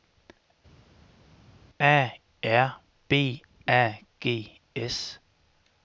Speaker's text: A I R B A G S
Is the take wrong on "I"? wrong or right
wrong